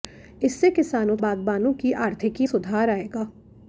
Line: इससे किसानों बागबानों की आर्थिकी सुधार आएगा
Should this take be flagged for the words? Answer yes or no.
no